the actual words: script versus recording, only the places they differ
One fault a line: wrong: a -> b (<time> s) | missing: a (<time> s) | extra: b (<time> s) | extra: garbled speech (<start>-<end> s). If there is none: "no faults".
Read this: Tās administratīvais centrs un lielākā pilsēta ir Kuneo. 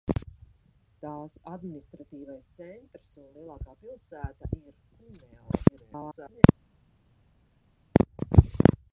extra: garbled speech (5.7-6.4 s)